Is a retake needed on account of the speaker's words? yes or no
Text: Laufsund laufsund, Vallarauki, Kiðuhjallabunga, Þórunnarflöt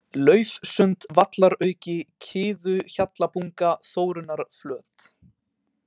yes